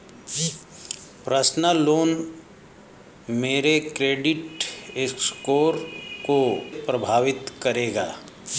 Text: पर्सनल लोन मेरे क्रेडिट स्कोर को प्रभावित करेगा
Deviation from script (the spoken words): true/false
false